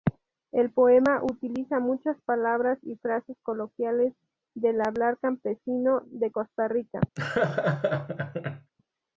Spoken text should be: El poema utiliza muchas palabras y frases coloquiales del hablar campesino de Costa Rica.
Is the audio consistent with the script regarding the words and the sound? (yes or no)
no